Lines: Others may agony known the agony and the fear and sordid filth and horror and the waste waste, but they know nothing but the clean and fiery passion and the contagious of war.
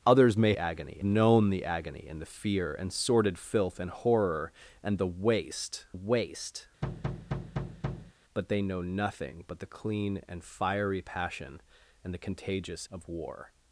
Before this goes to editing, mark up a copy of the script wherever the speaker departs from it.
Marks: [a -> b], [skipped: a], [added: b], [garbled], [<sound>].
Others may agony known the agony and the fear and sordid filth and horror and the waste waste, [thud] but they know nothing but the clean and fiery passion and the contagious of war.